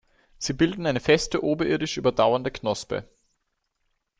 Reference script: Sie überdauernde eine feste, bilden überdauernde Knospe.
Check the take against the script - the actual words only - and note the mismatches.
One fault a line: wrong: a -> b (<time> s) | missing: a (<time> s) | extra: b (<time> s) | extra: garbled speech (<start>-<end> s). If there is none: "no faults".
wrong: überdauernde -> bilden (0.5 s)
wrong: bilden -> oberirdisch (1.4 s)